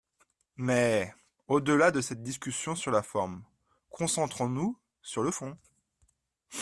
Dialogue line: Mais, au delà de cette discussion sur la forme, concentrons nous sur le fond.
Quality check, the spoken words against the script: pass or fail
pass